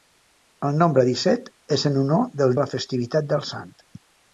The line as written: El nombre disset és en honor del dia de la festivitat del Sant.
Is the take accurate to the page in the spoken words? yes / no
no